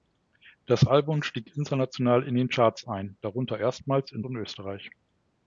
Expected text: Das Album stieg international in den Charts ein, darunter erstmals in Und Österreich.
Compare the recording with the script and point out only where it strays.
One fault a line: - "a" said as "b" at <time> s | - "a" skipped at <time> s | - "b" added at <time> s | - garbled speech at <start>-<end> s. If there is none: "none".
none